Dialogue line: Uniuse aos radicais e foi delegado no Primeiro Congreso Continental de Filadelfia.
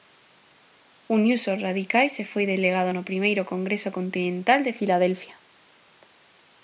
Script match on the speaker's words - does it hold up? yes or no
yes